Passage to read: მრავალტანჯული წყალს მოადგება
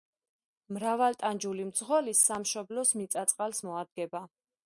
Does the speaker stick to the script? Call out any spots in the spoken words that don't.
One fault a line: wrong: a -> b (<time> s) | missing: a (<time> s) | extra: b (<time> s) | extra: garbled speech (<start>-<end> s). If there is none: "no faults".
extra: მძღოლი სამშობლოს მიწა (1.7 s)